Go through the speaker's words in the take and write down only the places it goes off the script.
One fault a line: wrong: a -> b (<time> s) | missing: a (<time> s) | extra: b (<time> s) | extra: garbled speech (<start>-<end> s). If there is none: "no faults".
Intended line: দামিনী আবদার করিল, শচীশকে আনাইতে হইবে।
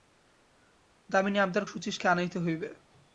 missing: করিল (1.6 s)